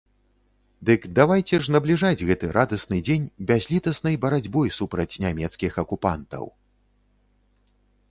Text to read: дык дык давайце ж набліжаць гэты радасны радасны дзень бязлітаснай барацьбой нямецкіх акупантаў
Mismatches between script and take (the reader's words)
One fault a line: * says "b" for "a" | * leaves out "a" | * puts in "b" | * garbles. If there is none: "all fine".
* leaves out "дык"
* leaves out "радасны"
* puts in "супраць"